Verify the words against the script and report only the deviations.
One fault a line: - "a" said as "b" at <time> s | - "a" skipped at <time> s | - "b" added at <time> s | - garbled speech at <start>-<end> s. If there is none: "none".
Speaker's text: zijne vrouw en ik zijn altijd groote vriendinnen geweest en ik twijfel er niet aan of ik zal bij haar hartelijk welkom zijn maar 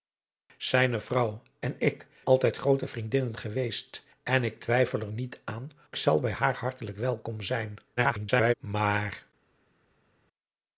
- "zijn" skipped at 2.1 s
- "of ik" skipped at 5.7 s
- garbled speech at 8.0-8.5 s